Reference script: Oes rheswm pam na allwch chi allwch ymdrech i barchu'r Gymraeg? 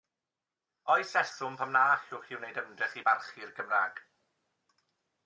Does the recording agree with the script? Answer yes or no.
no